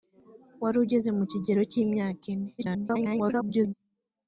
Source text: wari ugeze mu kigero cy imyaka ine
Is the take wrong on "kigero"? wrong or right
right